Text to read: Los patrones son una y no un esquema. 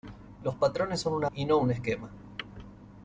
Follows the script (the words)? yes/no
yes